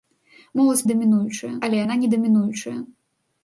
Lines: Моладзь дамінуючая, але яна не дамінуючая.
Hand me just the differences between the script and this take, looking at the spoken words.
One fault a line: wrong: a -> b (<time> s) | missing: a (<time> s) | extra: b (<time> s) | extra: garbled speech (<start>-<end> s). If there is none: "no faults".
no faults